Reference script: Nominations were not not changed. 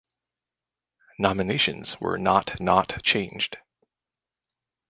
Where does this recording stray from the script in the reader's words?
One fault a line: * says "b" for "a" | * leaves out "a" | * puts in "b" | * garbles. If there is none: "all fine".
all fine